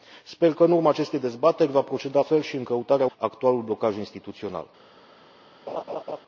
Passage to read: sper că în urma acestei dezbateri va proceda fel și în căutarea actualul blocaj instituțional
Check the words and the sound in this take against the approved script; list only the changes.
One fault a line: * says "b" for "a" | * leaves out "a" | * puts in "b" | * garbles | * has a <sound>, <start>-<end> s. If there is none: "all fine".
* has a laugh, 5.7-6.2 s